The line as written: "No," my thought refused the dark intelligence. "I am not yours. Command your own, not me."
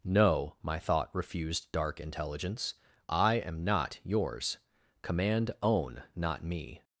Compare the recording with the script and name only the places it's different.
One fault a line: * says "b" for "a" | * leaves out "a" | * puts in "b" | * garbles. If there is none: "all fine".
* leaves out "the"
* leaves out "your"